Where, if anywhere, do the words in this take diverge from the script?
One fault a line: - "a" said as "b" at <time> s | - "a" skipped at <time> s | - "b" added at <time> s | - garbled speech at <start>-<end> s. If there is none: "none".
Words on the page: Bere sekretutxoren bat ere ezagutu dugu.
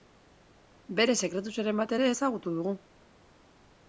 none